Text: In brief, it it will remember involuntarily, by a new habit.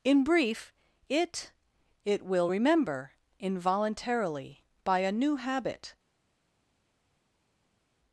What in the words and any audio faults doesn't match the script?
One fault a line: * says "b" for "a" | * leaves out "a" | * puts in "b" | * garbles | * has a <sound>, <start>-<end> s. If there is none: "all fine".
all fine